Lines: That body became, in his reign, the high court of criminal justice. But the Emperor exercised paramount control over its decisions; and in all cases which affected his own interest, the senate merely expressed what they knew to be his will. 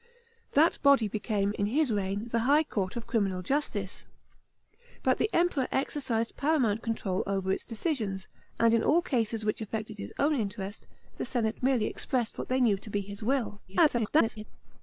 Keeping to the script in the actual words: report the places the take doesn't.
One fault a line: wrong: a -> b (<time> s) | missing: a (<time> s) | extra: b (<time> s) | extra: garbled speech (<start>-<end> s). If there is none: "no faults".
extra: garbled speech (13.7-14.4 s)